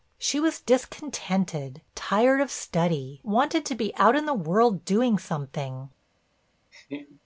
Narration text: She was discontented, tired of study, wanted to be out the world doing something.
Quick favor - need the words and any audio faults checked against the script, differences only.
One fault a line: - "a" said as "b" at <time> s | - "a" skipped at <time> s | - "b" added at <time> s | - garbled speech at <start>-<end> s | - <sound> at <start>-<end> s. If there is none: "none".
- "in" added at 4.1 s
- laugh at 6.7-7.2 s